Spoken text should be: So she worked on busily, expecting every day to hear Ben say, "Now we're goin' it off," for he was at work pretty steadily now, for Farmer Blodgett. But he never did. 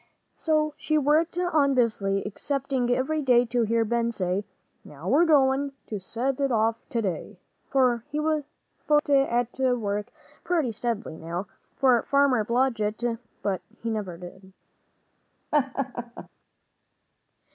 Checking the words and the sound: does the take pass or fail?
fail